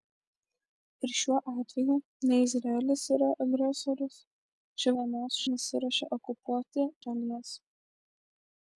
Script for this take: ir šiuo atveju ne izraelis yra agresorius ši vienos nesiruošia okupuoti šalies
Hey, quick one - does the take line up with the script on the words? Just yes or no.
yes